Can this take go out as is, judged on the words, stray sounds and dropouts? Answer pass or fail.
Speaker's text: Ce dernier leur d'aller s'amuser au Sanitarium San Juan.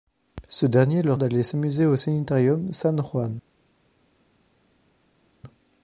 pass